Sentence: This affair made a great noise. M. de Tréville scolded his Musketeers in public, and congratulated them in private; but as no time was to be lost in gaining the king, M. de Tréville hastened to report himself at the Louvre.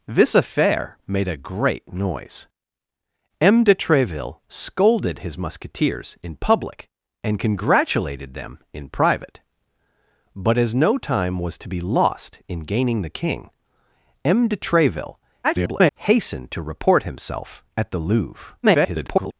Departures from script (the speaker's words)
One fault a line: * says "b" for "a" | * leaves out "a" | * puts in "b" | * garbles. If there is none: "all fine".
* garbles
* garbles